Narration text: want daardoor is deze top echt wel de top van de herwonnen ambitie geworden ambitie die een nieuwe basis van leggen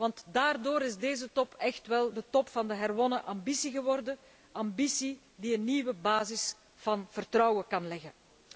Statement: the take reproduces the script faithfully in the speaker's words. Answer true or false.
false